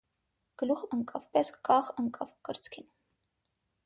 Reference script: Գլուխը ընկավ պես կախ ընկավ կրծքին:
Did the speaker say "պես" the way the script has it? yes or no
yes